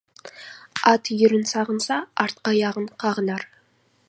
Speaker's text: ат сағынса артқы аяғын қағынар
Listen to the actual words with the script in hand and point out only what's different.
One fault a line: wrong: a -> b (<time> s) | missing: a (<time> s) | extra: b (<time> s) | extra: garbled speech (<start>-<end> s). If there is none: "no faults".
extra: үйірін (1.1 s)